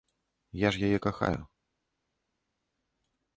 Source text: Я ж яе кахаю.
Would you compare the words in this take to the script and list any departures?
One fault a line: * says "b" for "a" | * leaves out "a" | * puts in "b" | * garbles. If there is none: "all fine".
all fine